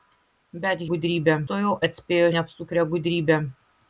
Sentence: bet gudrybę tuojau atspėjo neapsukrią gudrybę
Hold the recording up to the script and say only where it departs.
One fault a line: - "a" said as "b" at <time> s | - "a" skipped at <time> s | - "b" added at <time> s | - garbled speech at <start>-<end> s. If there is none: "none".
none